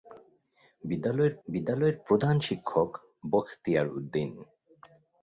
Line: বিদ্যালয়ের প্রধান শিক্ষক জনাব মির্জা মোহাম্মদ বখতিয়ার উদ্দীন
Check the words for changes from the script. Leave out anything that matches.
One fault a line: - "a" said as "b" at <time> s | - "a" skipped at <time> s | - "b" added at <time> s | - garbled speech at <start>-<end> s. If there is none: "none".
- "বিদ্যালয়ের" added at 1.5 s
- "জনাব মির্জা মোহাম্মদ" skipped at 2.9 s